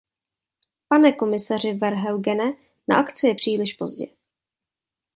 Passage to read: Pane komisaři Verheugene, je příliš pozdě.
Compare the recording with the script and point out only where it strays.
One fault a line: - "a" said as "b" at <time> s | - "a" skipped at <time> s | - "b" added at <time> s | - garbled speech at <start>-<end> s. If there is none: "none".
- "na akci" added at 2.9 s